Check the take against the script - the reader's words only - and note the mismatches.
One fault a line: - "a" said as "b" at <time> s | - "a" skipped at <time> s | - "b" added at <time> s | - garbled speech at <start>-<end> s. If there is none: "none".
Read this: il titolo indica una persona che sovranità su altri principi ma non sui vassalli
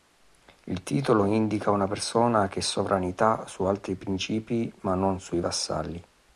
none